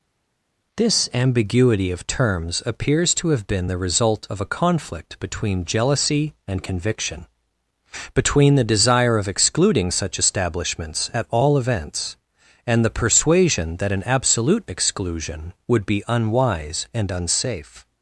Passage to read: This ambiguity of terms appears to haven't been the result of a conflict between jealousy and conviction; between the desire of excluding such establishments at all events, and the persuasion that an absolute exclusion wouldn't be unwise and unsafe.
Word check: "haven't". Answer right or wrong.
wrong